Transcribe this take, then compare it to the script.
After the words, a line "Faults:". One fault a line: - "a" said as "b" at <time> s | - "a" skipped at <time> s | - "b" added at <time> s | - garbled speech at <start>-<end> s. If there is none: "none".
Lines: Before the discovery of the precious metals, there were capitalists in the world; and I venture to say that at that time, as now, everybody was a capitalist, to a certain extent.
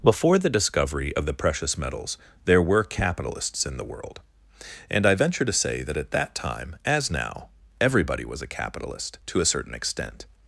Before the discovery of the precious metals, there were capitalists in the world; and I venture to say that at that time, as now, everybody was a capitalist, to a certain extent.
Faults:
none